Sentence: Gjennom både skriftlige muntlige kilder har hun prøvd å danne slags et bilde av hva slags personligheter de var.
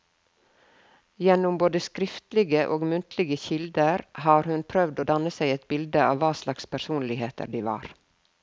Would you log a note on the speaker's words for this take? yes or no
yes